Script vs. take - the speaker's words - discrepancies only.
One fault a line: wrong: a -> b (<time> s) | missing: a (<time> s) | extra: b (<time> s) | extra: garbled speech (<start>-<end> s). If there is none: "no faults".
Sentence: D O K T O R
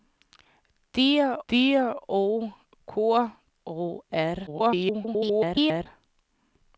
extra: d (1.5 s)
missing: T (3.3 s)
extra: garbled speech (4.5-5.9 s)